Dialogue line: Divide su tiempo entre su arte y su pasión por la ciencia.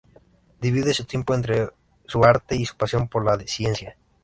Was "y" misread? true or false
false